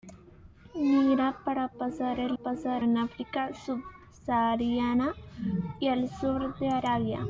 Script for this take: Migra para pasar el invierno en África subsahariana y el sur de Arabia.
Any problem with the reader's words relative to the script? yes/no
yes